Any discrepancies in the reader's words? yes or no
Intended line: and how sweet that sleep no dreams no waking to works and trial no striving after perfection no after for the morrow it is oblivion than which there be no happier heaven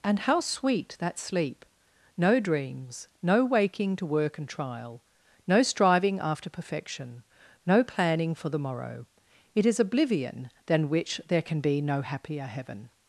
yes